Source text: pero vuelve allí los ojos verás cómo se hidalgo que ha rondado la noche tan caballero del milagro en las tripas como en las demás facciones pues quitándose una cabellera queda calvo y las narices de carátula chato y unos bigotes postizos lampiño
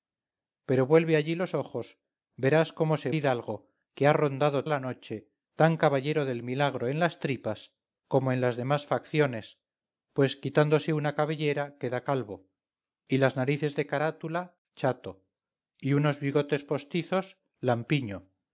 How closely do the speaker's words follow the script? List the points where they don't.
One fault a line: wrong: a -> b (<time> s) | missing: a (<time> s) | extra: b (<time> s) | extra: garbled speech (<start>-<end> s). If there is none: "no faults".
no faults